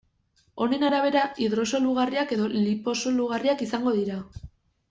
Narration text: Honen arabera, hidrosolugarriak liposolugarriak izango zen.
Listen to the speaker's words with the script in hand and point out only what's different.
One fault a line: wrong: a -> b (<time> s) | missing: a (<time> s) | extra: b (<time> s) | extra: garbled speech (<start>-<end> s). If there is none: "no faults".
extra: edo (2.4 s)
wrong: zen -> dira (4.0 s)